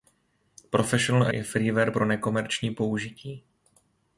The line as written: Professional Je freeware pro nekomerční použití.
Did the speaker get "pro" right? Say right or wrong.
right